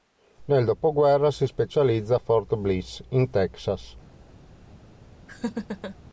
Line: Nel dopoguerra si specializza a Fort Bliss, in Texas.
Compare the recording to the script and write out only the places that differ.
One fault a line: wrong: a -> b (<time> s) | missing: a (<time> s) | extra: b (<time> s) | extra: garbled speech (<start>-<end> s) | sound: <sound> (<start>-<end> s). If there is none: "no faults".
sound: laugh (5.3-6.0 s)